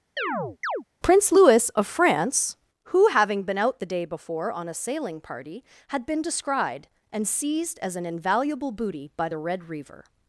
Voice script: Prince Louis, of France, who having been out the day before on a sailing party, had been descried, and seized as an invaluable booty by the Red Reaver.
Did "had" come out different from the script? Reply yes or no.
no